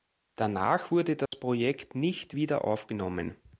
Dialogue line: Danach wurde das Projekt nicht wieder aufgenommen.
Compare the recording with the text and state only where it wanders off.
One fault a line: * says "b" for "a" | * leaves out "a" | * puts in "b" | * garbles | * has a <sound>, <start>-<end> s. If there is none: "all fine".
* has a dropout, 1.3-1.3 s